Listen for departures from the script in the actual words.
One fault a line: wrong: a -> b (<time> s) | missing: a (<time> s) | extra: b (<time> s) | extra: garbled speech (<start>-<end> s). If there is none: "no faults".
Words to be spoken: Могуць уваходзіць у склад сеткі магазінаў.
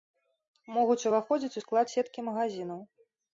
no faults